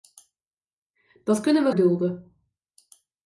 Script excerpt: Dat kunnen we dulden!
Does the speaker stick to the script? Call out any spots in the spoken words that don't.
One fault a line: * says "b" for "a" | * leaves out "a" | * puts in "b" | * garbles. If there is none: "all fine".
all fine